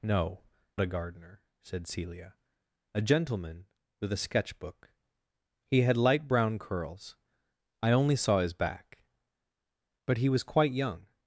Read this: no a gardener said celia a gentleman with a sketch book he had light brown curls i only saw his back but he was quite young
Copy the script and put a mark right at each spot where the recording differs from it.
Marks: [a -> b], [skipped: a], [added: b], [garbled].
no a gardener said celia a gentleman with a sketch book he had light brown curls i only saw his back but he was quite young